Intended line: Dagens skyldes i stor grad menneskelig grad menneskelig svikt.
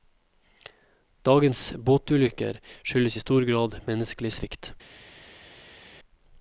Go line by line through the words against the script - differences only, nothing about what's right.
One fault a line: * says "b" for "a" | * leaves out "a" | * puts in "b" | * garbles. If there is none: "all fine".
* puts in "båtulykker"
* leaves out "grad menneskelig"